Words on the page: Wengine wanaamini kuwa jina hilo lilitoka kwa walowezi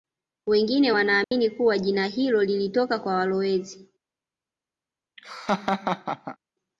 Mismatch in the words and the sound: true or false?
true